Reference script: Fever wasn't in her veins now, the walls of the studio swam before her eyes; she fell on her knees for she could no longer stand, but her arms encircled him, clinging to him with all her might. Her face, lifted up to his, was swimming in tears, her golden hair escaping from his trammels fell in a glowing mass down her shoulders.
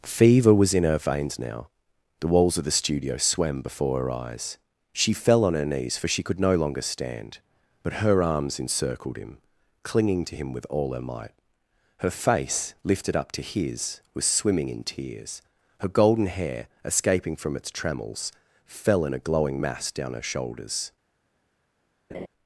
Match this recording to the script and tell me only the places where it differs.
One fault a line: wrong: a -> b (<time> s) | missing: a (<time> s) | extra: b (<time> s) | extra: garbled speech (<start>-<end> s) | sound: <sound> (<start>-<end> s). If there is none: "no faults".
wrong: wasn't -> was (0.5 s)
wrong: his -> its (17.6 s)
sound: laugh (22.1-22.3 s)